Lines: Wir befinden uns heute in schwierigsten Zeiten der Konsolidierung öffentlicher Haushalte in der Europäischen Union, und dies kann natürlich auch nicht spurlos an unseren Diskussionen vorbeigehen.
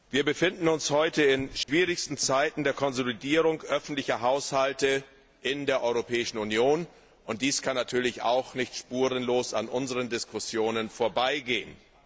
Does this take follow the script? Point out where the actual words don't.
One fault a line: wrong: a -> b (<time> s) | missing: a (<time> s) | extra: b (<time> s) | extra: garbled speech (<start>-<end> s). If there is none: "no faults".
no faults